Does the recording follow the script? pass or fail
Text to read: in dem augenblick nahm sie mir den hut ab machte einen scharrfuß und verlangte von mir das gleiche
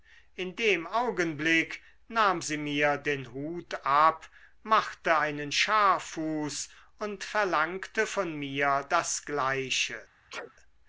pass